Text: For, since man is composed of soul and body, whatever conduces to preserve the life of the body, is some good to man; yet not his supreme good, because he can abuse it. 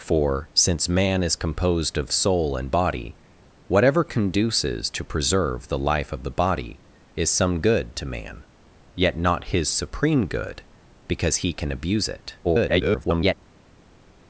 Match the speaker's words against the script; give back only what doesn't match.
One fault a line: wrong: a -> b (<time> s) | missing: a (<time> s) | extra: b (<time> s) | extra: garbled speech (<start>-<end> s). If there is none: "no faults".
extra: garbled speech (12.4-13.3 s)